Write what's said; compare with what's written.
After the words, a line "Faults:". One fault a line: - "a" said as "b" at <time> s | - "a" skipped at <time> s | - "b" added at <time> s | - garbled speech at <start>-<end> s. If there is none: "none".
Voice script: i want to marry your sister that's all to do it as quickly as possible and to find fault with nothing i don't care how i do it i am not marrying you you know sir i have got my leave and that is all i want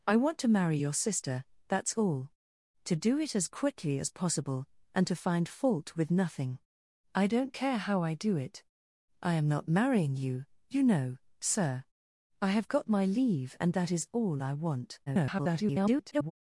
i want to marry your sister that's all to do it as quickly as possible and to find fault with nothing i don't care how i do it i am not marrying you you know sir i have got my leave and that is all i want [garbled]
Faults:
- garbled speech at 15.1-16.3 s